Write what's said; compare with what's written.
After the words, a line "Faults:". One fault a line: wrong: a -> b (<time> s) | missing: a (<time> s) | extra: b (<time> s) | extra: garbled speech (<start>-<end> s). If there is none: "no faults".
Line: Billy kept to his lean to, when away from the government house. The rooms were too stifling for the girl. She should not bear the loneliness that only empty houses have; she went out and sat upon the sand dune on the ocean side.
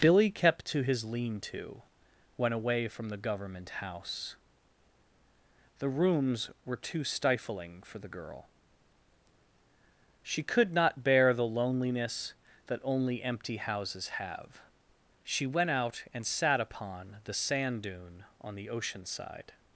Billy kept to his lean to, when away from the government house. The rooms were too stifling for the girl. She could not bear the loneliness that only empty houses have; she went out and sat upon the sand dune on the ocean side.
Faults:
wrong: should -> could (10.4 s)